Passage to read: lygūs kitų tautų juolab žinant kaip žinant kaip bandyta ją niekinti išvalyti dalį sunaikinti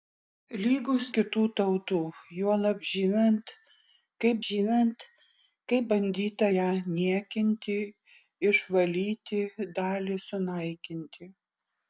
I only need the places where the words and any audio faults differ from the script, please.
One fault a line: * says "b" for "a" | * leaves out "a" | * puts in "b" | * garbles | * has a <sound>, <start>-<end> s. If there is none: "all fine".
all fine